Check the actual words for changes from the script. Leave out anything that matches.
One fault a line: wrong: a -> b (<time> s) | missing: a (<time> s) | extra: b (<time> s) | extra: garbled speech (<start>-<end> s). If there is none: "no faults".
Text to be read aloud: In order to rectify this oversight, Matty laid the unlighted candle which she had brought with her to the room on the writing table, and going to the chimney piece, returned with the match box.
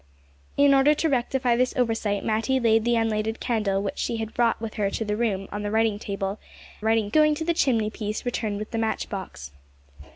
wrong: and -> writing (6.8 s)